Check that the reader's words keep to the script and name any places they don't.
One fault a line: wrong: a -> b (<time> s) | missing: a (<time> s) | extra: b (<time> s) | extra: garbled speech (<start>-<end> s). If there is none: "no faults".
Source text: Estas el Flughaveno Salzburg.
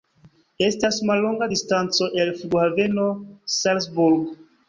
extra: mallonga distanco (1.1 s)